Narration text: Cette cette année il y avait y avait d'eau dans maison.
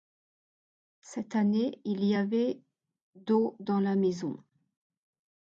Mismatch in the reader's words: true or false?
true